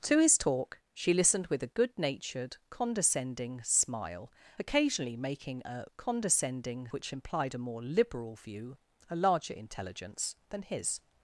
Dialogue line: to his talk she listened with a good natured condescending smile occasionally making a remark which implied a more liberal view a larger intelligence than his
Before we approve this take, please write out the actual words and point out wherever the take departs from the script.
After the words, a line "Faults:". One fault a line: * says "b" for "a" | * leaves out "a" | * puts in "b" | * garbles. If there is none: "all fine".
to his talk she listened with a good natured condescending smile occasionally making a condescending which implied a more liberal view a larger intelligence than his
Faults:
* says "condescending" for "remark"